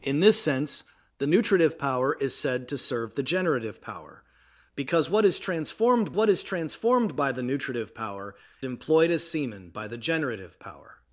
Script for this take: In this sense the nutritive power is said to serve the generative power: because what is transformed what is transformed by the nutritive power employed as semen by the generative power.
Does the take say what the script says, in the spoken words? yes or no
yes